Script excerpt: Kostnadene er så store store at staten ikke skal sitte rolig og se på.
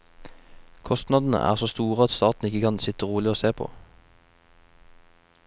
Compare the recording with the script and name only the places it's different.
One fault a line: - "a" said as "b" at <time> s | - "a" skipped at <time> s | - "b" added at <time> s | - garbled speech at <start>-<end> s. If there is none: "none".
- "store" skipped at 2.0 s
- "skal" said as "kan" at 2.6 s